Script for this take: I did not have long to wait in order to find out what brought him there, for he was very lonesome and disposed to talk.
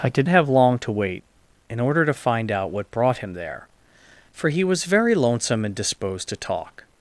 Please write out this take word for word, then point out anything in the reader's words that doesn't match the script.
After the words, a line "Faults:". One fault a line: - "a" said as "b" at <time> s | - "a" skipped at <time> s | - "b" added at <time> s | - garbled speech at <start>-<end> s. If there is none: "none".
I did have long to wait in order to find out what brought him there, for he was very lonesome and disposed to talk.
Faults:
- "not" skipped at 0.3 s